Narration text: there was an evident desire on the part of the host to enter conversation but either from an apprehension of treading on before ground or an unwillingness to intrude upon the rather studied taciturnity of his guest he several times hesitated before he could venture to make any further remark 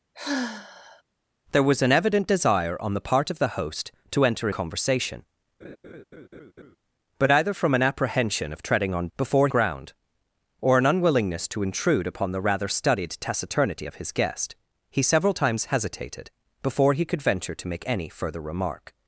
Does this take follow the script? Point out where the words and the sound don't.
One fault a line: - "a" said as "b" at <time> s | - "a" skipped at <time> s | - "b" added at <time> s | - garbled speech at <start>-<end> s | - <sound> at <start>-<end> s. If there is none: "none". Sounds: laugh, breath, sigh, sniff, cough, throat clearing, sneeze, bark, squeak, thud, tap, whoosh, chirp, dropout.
- sigh at 0.1-1.0 s
- laugh at 5.6-6.8 s